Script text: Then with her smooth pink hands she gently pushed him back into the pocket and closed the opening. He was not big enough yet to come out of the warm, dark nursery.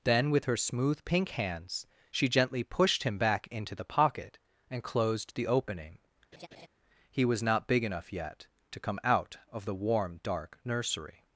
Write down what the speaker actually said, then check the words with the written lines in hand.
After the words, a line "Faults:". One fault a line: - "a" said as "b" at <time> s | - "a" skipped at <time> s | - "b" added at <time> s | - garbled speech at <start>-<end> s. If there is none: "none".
Then with her smooth pink hands she gently pushed him back into the pocket and closed the opening. He was not big enough yet to come out of the warm, dark nursery.
Faults:
none